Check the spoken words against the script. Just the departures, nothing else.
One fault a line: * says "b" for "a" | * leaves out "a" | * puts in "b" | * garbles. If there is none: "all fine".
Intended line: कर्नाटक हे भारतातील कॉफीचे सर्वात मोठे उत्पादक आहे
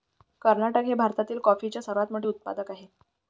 all fine